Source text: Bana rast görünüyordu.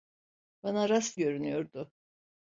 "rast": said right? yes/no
yes